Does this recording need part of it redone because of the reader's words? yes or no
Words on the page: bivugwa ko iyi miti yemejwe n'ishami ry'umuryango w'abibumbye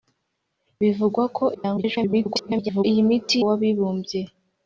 yes